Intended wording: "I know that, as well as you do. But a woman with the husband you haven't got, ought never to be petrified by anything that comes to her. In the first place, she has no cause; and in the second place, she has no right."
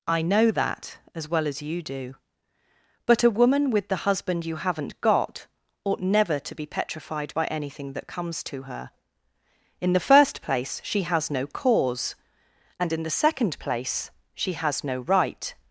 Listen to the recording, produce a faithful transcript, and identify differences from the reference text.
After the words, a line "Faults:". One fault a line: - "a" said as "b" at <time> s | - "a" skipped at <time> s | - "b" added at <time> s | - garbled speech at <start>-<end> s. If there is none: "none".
"I know that, as well as you do. But a woman with the husband you haven't got, ought never to be petrified by anything that comes to her. In the first place, she has no cause; and in the second place, she has no right."
Faults:
none